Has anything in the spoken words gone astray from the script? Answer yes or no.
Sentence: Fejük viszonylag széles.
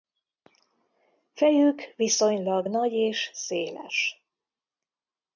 yes